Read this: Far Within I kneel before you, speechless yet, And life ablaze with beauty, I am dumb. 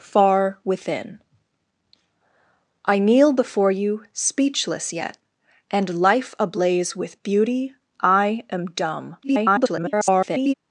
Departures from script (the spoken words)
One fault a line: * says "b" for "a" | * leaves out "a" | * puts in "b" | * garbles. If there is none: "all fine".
* garbles